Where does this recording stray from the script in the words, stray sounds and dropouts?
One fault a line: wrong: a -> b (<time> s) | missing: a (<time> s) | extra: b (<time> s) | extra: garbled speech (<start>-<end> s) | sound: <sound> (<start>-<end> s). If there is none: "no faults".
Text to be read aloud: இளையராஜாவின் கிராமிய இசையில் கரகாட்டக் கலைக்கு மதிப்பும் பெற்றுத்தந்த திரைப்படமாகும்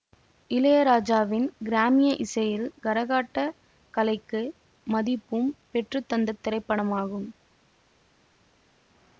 no faults